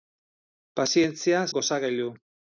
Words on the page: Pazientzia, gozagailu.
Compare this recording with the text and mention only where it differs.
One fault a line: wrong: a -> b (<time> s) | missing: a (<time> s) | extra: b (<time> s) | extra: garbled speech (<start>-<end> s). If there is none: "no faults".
no faults